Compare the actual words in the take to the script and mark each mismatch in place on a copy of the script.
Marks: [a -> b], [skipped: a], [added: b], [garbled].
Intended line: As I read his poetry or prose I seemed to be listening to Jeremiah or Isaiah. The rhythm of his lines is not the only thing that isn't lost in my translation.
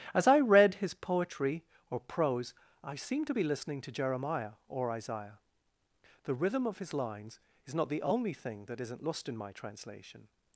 As I read his poetry or prose I seemed to be listening to Jeremiah or Isaiah. The rhythm of his lines is not the only thing that isn't lost in my translation.